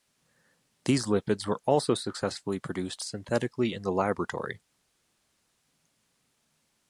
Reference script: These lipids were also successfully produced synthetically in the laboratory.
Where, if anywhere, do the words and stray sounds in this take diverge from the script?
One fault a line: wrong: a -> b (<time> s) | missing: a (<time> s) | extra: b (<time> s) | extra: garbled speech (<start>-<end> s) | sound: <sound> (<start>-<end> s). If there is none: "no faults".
no faults